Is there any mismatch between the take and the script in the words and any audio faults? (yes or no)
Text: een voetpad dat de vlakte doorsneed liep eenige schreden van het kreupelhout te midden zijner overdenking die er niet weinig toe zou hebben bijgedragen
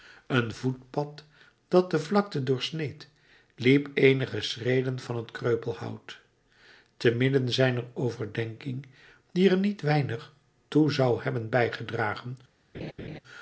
yes